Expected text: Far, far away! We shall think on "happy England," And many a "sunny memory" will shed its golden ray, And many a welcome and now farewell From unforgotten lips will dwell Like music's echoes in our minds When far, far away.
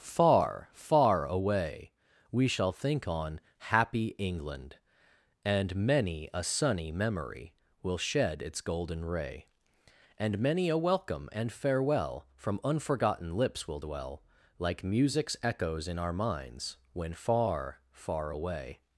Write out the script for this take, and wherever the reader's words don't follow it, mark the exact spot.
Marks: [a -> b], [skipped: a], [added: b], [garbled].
Far, far away! We shall think on "happy England," And many a "sunny memory" will shed its golden ray, And many a welcome and [skipped: now] farewell From unforgotten lips will dwell Like music's echoes in our minds When far, far away.